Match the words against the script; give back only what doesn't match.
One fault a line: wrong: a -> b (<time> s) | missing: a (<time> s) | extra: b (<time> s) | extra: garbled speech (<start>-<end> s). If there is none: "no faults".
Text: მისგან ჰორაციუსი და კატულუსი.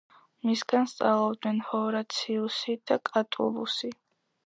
extra: სწავლობდნენ (0.9 s)